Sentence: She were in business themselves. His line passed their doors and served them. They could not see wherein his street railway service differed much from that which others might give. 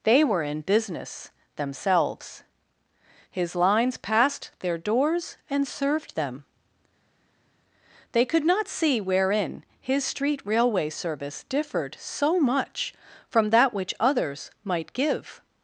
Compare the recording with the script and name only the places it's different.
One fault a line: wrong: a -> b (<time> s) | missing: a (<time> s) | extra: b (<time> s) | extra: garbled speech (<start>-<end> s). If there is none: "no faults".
wrong: She -> They (0.0 s)
wrong: line -> lines (3.5 s)
extra: so (12.0 s)